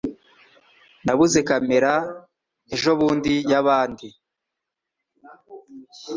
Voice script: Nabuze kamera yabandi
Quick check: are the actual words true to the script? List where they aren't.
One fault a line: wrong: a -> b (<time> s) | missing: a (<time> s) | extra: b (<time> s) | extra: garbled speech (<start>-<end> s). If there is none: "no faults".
extra: ejobundi (2.7 s)